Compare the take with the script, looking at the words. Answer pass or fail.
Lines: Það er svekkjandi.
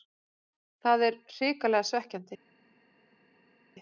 fail